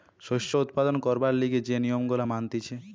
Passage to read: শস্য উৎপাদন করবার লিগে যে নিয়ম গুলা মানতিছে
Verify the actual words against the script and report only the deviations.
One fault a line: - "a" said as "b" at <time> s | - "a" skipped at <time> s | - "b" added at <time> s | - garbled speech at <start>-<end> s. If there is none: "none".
none